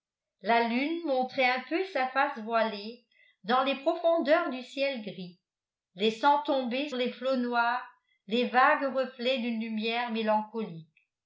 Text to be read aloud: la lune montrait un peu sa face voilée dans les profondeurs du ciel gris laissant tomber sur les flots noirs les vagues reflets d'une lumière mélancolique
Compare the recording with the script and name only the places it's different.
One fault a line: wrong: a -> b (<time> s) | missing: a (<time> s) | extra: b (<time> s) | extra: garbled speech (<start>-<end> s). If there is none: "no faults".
missing: sur (6.9 s)